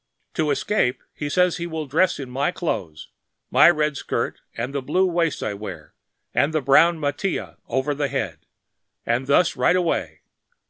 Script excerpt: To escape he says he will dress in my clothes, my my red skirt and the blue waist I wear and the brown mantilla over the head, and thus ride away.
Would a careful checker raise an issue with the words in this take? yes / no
yes